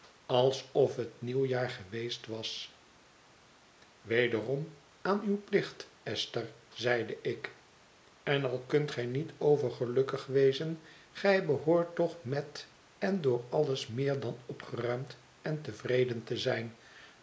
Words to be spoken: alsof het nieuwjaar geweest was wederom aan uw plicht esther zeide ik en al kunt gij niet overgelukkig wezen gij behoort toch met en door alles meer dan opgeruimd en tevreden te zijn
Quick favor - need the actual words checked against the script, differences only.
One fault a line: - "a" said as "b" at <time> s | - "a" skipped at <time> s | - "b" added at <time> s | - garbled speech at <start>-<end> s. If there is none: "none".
none